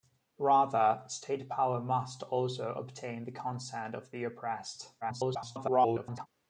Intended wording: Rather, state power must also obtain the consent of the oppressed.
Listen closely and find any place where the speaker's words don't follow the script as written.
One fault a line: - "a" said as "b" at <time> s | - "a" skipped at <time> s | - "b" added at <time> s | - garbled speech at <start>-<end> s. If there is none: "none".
- garbled speech at 5.0-6.3 s